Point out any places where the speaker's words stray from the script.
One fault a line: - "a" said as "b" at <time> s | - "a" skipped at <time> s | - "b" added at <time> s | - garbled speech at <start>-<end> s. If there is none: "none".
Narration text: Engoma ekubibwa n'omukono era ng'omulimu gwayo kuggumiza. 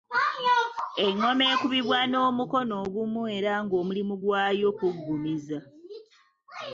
- "ogumu" added at 2.8 s